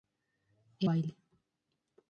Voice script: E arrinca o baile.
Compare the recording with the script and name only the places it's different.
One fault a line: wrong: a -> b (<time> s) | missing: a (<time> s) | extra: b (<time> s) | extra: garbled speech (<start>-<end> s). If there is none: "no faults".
missing: arrinca (0.9 s)